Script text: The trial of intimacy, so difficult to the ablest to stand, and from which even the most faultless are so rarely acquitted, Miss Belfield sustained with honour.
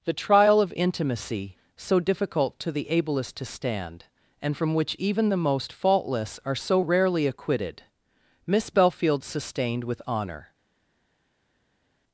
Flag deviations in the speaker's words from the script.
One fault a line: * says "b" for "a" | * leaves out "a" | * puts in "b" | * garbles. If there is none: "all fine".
all fine